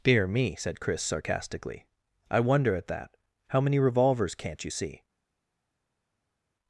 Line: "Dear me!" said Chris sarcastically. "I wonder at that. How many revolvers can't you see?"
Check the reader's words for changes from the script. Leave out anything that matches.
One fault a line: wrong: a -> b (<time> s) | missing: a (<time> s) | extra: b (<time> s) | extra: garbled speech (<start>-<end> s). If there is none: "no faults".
no faults